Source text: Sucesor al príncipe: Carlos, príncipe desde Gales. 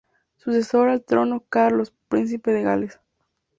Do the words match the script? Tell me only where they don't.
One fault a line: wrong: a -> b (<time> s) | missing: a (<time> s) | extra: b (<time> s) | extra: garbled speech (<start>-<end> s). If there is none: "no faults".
wrong: príncipe -> trono (1.0 s)
wrong: desde -> de (2.5 s)